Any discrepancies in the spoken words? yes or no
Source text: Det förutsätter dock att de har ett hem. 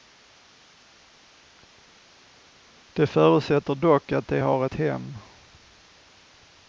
no